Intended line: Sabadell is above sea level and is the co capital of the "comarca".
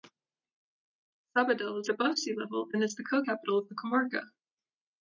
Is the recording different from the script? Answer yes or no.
no